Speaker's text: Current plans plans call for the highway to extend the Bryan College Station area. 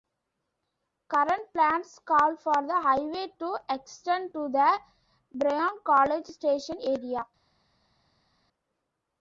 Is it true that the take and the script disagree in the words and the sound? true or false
true